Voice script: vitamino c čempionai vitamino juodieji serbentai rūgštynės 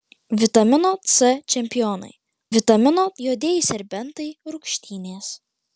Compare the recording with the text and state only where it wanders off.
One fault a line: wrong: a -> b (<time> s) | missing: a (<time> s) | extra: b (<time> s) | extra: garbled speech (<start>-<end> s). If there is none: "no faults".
no faults